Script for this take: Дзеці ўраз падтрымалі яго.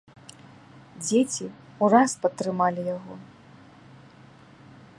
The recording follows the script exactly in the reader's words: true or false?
true